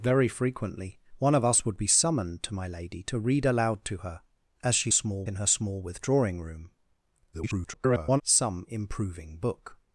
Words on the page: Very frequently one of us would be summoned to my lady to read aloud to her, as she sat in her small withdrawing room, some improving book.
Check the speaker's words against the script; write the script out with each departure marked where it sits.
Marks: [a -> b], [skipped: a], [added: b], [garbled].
Very frequently one of us would be summoned to my lady to read aloud to her, as she [sat -> small] in her small withdrawing room, [garbled] some improving book.